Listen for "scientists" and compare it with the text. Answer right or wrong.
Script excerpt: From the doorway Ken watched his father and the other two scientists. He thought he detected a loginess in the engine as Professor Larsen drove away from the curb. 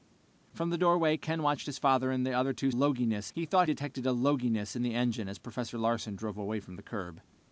wrong